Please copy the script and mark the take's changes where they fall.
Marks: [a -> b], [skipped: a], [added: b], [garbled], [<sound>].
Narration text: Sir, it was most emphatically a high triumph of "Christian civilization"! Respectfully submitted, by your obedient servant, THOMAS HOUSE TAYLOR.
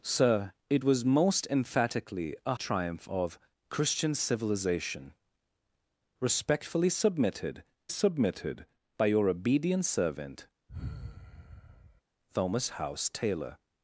Sir, it was most emphatically a [skipped: high] triumph of "Christian civilization"! Respectfully submitted, [added: submitted] by your obedient servant, [sigh] THOMAS HOUSE TAYLOR.